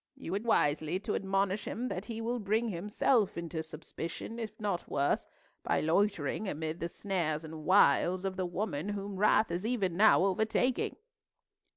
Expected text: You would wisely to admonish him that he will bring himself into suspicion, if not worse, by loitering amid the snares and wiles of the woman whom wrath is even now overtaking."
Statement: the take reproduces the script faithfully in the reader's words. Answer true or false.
true